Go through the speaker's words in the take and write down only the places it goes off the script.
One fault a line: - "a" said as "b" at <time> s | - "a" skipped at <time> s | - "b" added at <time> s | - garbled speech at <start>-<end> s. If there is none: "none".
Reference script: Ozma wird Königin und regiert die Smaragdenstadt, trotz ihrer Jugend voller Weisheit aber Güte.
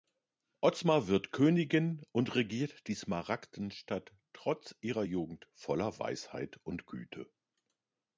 - "aber" said as "und" at 6.6 s